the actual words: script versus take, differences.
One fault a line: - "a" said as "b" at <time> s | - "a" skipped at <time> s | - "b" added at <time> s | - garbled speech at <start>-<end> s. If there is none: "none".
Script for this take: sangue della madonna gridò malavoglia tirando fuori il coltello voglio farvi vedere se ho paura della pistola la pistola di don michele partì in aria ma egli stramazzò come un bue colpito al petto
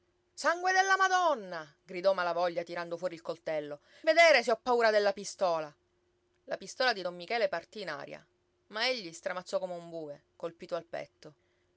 - "voglio farvi" skipped at 3.8 s